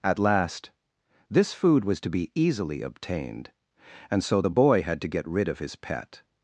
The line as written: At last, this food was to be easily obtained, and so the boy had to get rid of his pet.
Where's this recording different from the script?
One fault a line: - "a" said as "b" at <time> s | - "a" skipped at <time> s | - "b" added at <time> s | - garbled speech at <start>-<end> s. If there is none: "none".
none